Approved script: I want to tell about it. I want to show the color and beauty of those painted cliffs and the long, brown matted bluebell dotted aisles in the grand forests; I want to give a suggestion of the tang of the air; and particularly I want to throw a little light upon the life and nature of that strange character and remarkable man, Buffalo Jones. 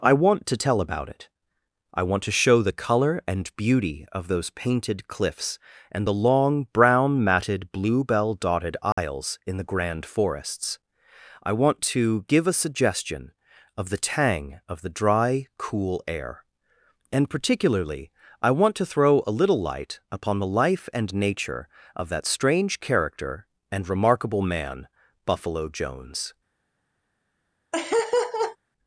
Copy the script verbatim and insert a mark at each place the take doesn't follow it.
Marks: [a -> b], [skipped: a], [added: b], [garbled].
I want to tell about it. I want to show the color and beauty of those painted cliffs and the long, brown matted bluebell dotted aisles in the grand forests; I want to give a suggestion of the tang of the [added: dry cool] air; and particularly I want to throw a little light upon the life and nature of that strange character and remarkable man, Buffalo Jones.